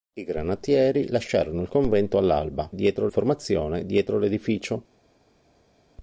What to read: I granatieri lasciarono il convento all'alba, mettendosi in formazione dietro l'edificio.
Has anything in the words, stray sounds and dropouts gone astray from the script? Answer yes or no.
yes